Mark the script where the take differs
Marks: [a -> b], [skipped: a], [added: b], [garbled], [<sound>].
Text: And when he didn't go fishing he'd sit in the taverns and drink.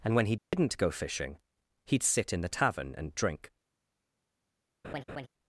And when he didn't [dropout] go fishing he'd sit in the [taverns -> tavern] and drink. [laugh]